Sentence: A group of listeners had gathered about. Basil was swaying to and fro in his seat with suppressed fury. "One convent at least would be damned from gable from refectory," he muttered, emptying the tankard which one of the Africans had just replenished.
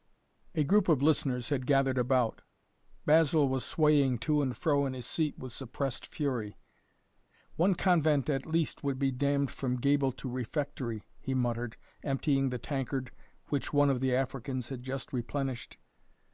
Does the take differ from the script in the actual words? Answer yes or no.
yes